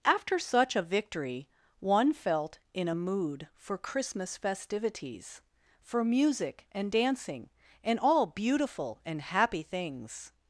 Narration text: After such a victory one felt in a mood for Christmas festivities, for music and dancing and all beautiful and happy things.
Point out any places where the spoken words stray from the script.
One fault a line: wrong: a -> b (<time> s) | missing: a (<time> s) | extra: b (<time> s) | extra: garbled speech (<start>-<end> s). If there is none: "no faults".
no faults